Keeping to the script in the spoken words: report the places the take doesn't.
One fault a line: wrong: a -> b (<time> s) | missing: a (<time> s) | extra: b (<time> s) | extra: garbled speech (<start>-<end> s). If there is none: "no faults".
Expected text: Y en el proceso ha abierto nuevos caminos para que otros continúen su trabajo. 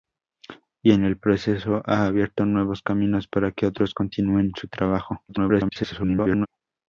extra: garbled speech (5.3-6.5 s)